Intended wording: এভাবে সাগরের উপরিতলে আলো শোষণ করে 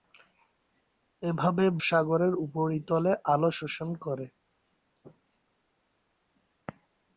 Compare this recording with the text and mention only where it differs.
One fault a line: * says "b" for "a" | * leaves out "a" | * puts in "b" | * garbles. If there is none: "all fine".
all fine